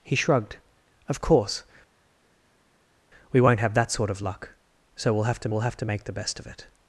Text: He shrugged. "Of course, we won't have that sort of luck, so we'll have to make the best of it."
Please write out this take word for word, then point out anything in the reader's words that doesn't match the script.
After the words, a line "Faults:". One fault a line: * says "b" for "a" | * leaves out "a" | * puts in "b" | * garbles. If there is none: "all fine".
He shrugged. "Of course, we won't have that sort of luck, so we'll have to we'll have to make the best of it."
Faults:
* puts in "we'll have to"